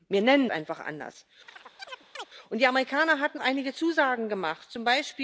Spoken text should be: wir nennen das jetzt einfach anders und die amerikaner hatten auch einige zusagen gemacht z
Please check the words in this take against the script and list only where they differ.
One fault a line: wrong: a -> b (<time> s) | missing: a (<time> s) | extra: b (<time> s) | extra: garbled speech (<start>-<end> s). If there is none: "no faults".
missing: das jetzt (0.5 s)
missing: auch (3.4 s)